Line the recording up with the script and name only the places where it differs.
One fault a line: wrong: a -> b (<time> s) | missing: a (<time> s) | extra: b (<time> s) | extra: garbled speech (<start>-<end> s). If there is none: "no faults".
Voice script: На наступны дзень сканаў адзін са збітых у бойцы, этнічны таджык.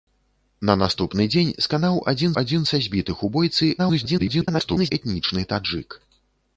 extra: адзін (2.4 s)
extra: garbled speech (3.8-4.9 s)